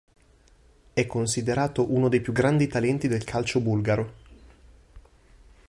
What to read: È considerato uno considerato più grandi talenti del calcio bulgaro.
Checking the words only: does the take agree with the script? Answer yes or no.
no